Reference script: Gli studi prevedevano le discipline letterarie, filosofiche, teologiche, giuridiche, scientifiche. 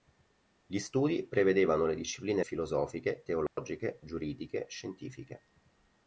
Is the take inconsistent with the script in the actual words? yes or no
yes